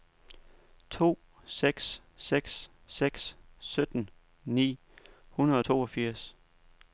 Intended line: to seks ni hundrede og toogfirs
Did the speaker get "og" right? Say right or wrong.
right